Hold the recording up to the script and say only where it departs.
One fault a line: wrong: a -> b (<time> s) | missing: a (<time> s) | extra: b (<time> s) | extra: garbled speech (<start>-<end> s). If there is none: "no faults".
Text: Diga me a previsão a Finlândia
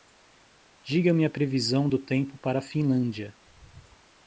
extra: do tempo para (1.8 s)